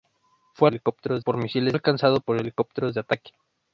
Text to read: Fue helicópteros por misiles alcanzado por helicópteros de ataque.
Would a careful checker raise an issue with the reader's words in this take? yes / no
no